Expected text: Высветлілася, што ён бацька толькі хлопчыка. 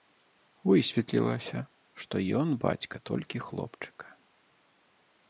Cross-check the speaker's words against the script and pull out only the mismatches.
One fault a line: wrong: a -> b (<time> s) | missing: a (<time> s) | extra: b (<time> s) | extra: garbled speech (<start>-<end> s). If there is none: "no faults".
no faults